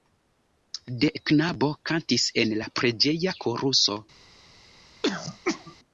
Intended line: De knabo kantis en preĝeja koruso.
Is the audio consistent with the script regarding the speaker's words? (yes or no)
no